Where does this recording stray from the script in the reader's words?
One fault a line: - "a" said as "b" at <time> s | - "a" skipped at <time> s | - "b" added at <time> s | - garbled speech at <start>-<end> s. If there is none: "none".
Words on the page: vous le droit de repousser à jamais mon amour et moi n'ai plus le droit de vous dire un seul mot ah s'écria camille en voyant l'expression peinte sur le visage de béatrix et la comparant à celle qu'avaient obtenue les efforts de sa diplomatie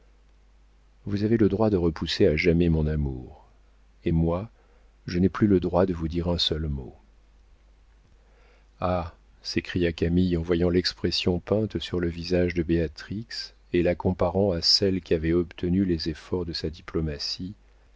- "avez" added at 1.2 s
- "je" added at 5.1 s